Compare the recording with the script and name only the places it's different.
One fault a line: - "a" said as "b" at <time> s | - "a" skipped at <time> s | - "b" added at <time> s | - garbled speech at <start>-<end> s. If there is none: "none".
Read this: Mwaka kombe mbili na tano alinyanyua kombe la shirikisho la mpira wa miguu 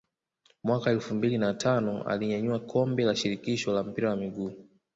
- "kombe" said as "elfu" at 0.9 s